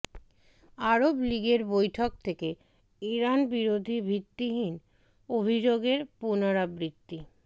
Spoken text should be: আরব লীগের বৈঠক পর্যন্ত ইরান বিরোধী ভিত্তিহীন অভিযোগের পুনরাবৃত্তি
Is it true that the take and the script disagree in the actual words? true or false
true